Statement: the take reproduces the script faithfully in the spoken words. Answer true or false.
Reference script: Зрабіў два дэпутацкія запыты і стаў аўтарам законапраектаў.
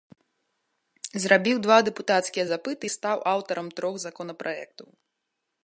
false